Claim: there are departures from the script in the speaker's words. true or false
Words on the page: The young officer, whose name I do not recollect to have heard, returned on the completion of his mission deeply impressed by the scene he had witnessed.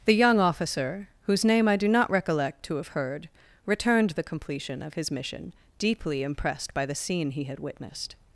true